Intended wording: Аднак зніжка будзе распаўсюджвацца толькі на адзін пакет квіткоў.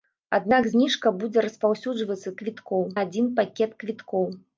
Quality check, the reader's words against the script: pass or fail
fail